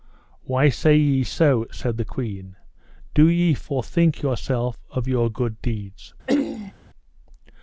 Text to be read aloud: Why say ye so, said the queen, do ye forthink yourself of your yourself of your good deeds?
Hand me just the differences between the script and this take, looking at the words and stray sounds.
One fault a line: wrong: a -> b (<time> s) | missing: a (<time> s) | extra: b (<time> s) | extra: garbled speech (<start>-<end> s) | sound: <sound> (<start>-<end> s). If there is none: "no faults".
missing: yourself of your (5.3 s)
sound: throat clearing (6.3-6.7 s)